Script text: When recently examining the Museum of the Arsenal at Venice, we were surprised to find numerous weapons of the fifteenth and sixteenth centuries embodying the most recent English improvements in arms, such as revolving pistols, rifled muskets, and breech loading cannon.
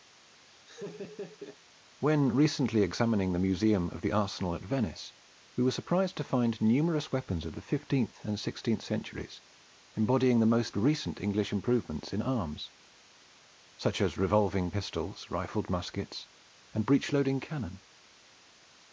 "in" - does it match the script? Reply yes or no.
yes